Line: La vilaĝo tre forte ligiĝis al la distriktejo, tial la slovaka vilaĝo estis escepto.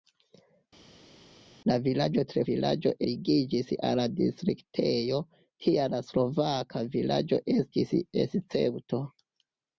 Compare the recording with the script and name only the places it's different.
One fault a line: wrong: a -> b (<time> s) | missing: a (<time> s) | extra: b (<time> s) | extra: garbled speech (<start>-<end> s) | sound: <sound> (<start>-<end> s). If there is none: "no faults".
wrong: forte -> vilaĝo (2.5 s)